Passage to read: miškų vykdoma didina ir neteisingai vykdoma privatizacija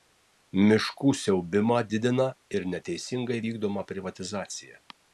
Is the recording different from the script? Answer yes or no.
yes